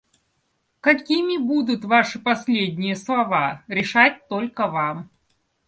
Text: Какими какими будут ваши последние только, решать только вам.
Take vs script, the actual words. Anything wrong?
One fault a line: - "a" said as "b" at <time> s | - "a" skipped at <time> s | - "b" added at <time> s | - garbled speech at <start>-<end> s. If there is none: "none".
- "какими" skipped at 1.4 s
- "только" said as "слова" at 3.0 s